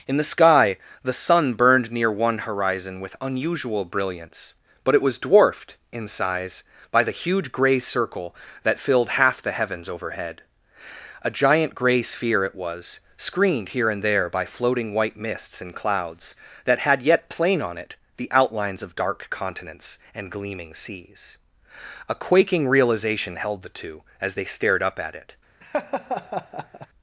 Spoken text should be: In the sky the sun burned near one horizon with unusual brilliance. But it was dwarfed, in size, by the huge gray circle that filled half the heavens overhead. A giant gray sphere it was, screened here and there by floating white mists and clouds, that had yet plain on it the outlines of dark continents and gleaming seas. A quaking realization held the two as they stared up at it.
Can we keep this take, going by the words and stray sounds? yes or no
no